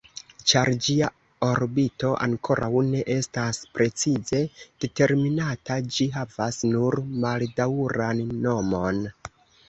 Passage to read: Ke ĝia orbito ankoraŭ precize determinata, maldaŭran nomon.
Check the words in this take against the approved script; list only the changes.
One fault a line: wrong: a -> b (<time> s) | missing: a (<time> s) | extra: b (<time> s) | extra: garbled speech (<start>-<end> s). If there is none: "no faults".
wrong: Ke -> Ĉar (0.5 s)
extra: ne estas (2.9 s)
extra: ĝi havas nur (6.0 s)